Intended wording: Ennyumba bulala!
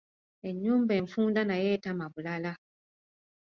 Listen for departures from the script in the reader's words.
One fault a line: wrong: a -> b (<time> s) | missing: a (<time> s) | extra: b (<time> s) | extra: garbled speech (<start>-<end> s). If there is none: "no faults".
extra: enfunda nayo etama (1.0 s)